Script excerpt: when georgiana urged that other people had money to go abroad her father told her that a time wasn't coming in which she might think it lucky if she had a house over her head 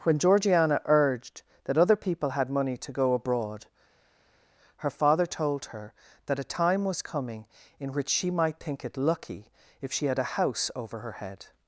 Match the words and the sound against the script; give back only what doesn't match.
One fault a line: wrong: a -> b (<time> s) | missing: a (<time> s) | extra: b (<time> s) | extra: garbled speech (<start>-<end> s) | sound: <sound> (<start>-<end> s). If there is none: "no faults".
wrong: wasn't -> was (6.8 s)